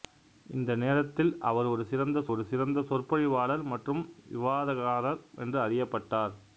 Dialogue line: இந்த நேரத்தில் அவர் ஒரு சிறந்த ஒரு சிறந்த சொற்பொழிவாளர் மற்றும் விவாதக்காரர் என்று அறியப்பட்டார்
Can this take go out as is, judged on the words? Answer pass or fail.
pass